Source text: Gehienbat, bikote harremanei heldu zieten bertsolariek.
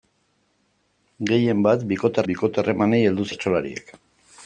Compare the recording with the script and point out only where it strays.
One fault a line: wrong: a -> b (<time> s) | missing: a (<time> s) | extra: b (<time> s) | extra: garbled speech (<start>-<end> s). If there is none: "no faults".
extra: bikote (2.3 s)
missing: zieten (3.3 s)